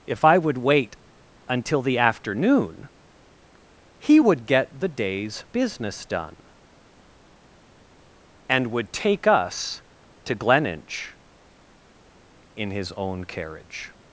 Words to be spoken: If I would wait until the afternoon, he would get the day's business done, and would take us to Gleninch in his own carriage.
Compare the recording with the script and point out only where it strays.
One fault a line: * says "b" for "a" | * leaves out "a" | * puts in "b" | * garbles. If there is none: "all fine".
all fine